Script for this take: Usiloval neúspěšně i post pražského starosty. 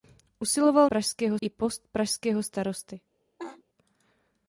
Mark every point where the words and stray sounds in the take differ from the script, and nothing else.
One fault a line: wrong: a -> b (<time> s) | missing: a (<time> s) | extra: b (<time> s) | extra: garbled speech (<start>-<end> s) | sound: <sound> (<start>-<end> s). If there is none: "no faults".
wrong: neúspěšně -> pražského (0.9 s)
sound: laugh (3.4-3.6 s)